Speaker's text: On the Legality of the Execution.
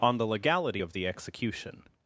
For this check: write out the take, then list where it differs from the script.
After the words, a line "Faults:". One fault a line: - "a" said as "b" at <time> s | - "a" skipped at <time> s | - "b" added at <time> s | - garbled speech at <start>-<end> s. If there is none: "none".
On the Legality of the Execution.
Faults:
none